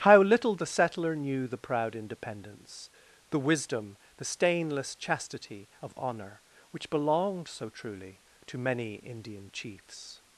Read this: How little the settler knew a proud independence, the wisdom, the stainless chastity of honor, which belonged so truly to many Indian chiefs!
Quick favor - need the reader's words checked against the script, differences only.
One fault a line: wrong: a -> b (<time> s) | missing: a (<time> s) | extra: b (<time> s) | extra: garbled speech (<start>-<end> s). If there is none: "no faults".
wrong: a -> the (1.5 s)